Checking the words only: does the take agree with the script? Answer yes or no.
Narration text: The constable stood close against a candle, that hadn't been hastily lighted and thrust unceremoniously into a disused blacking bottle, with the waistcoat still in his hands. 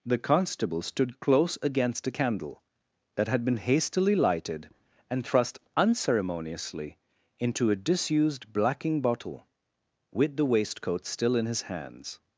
no